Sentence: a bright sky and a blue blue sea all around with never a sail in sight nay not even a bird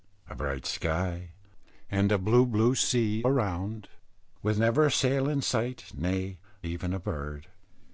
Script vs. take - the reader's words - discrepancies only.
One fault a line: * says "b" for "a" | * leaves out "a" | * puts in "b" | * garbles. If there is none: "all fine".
* leaves out "all"
* leaves out "not"